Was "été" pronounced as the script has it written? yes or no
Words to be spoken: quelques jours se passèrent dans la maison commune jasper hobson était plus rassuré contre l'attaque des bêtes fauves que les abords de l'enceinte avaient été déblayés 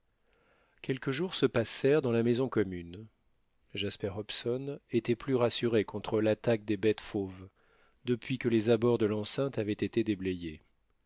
yes